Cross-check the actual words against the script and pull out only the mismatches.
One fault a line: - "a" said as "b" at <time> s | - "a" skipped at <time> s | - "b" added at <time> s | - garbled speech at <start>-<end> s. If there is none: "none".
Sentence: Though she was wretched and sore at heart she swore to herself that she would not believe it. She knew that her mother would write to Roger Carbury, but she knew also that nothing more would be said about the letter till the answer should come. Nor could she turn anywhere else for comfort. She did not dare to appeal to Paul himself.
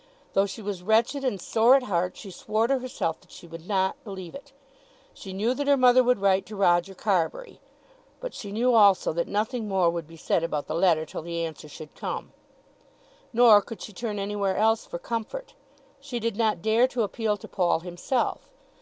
none